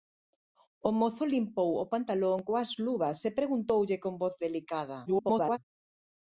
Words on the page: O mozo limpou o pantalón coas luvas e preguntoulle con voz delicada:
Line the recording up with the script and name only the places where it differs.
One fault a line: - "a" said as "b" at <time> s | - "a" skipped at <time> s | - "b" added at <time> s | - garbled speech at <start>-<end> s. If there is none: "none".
- garbled speech at 5.1-5.6 s